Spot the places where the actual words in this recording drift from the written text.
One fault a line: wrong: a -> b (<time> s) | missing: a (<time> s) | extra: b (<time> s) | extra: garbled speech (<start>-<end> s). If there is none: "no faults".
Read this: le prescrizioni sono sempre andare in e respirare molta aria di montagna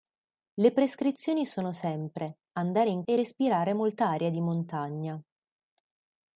no faults